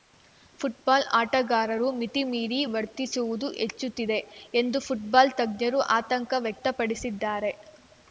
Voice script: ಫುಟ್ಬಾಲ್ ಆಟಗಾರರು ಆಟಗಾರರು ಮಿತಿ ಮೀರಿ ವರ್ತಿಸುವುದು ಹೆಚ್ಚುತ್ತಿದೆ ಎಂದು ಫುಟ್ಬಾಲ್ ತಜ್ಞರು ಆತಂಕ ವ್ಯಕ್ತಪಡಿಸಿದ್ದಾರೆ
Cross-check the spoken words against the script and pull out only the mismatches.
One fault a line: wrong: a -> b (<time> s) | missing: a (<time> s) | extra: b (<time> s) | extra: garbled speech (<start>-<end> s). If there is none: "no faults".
missing: ಆಟಗಾರರು (1.9 s)